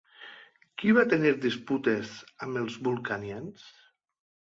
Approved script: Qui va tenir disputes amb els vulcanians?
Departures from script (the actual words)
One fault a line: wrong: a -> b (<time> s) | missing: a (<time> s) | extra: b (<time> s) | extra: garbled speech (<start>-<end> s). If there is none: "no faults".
no faults